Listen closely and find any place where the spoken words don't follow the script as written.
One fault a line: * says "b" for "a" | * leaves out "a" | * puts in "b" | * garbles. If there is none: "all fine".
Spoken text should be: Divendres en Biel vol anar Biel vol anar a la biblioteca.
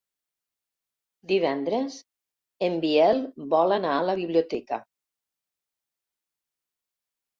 * leaves out "Biel vol anar"